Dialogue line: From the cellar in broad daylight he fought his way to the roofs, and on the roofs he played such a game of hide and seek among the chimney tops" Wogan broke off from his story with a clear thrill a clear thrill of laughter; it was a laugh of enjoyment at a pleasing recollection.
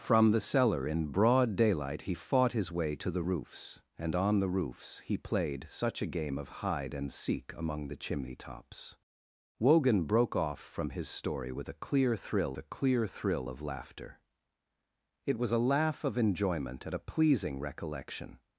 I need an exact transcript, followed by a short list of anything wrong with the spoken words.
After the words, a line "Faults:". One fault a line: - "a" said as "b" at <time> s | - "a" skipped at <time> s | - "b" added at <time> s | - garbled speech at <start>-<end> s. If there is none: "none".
From the cellar in broad daylight he fought his way to the roofs, and on the roofs he played such a game of hide and seek among the chimney tops" Wogan broke off from his story with a clear thrill a clear thrill of laughter; it was a laugh of enjoyment at a pleasing recollection.
Faults:
none